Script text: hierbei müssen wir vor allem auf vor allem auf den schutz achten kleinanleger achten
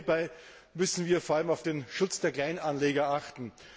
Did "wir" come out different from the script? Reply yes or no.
no